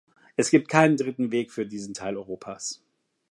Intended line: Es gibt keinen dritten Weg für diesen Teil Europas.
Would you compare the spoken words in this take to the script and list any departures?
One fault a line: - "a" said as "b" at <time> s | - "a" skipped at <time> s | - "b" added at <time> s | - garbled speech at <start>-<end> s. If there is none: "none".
none